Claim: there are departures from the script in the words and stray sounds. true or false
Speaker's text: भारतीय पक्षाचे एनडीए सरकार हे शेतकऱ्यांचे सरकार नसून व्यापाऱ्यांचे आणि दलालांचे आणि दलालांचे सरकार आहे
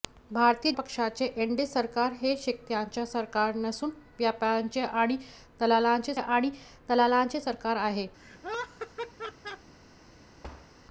true